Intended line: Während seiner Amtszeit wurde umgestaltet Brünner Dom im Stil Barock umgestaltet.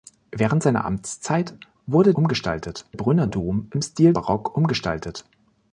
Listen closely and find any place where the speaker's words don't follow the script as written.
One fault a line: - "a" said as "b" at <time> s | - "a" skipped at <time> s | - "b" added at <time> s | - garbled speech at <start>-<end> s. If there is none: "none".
none